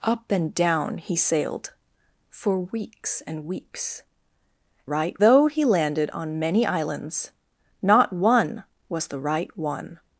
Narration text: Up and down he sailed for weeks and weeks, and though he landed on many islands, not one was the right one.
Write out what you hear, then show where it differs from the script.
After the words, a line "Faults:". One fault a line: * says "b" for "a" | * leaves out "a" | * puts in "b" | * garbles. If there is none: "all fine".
Up and down he sailed for weeks and weeks, right though he landed on many islands, not one was the right one.
Faults:
* says "right" for "and"